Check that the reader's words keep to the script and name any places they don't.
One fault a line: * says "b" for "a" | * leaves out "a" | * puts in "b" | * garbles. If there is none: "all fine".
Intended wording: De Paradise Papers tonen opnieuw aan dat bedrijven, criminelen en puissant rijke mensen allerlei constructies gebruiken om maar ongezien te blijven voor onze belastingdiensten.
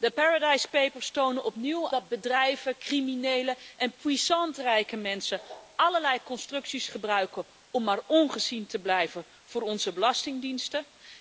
* leaves out "aan"